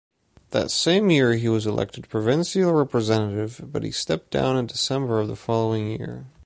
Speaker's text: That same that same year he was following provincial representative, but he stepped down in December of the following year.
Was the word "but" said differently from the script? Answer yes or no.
no